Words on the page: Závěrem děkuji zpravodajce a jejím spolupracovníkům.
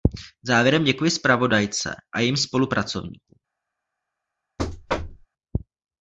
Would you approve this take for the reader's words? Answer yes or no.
yes